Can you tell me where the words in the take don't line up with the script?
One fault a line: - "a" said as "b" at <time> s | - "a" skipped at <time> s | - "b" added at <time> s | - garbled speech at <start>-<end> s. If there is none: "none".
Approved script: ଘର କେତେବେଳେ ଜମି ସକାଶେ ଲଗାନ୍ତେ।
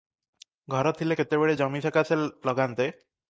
- "ଥିଲେ" added at 0.9 s